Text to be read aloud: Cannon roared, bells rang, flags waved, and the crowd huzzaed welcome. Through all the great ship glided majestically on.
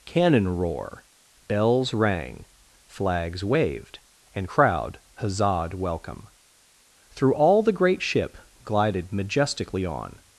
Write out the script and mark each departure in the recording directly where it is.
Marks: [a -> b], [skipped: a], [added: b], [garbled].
Cannon [roared, -> roar] bells rang, flags waved, and [skipped: the] crowd huzzaed welcome. Through all the great ship glided majestically on.